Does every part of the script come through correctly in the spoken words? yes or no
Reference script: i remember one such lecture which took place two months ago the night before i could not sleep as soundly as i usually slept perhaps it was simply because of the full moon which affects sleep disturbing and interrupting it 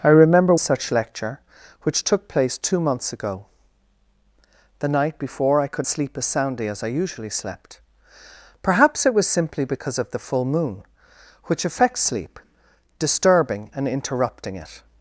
no